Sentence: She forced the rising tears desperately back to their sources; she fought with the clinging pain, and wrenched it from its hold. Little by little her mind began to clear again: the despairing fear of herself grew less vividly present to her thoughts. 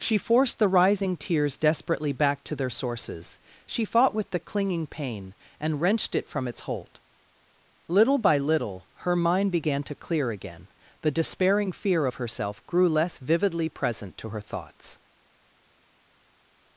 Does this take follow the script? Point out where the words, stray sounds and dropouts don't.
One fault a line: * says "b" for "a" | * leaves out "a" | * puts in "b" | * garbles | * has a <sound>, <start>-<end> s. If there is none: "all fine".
all fine